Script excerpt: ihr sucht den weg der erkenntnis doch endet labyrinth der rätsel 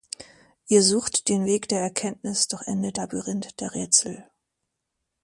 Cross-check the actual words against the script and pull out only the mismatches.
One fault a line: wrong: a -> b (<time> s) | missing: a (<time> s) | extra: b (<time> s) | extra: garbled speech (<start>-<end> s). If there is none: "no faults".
no faults